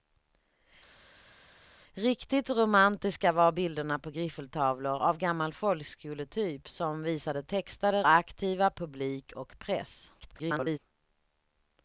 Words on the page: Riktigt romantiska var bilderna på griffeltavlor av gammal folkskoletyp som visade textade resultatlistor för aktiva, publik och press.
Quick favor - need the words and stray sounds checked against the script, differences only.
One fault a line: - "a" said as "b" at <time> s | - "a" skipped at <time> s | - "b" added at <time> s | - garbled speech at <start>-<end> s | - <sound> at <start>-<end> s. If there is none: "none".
- "resultatlistor för" skipped at 8.1 s
- garbled speech at 10.2-10.8 s